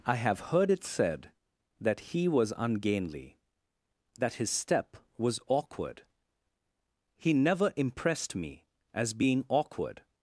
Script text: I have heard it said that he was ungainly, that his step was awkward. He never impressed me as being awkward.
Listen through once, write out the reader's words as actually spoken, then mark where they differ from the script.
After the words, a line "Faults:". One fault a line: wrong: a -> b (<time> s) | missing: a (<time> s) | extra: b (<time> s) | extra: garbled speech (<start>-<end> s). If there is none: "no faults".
I have heard it said that he was ungainly, that his step was awkward. He never impressed me as being awkward.
Faults:
no faults